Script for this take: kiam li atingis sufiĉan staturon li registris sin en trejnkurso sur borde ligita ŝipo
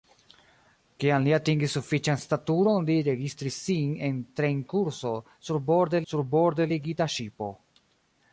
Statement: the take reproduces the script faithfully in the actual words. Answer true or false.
false